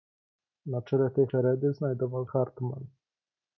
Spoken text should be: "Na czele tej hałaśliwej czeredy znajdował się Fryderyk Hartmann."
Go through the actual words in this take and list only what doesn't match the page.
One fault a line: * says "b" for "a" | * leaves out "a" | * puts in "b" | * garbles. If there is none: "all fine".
* leaves out "hałaśliwej"
* leaves out "się Fryderyk"